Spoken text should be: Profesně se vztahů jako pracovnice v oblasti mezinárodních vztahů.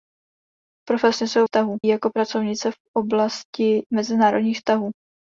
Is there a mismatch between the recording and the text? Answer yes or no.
no